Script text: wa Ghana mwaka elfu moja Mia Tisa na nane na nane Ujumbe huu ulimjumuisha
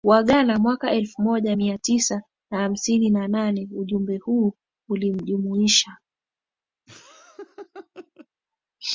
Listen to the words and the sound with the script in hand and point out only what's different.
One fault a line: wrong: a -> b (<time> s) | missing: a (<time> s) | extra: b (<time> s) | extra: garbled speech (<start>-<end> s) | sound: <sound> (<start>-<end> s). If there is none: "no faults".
wrong: nane -> hamsini (2.6 s)
sound: laugh (6.9-8.3 s)